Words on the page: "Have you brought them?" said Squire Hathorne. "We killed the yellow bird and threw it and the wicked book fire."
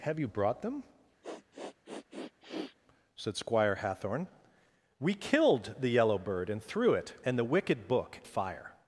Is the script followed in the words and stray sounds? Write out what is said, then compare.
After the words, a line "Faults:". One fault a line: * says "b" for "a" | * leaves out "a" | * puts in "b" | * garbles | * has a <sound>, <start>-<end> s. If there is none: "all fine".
"Have you brought them?" said Squire Hathorne. "We killed the yellow bird and threw it and the wicked book fire."
Faults:
* has a sniff, 1.2-2.8 s